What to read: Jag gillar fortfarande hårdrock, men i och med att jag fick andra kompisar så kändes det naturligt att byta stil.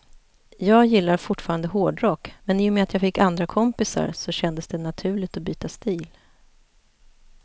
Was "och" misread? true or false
false